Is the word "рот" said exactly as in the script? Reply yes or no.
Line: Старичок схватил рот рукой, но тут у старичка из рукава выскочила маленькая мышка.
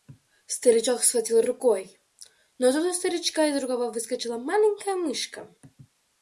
no